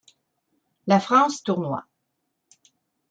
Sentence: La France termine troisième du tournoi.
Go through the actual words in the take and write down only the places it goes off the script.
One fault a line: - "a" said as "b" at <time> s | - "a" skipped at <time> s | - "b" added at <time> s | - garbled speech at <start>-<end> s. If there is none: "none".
- "termine troisième du" skipped at 1.4 s